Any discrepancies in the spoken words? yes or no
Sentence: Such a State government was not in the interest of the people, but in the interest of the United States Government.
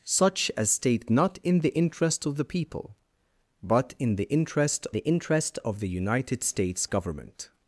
yes